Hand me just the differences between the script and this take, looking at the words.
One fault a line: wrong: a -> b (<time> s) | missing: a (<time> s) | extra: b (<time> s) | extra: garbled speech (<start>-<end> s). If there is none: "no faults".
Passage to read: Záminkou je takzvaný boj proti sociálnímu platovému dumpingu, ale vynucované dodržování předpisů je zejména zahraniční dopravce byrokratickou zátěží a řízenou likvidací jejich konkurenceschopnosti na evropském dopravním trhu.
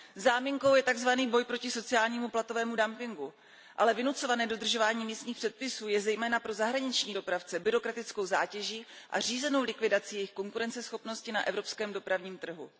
extra: místních (5.0 s)
extra: pro (6.4 s)